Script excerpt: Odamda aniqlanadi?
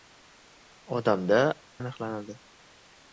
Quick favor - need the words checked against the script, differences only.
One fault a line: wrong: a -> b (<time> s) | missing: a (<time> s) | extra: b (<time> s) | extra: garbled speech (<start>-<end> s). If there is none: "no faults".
no faults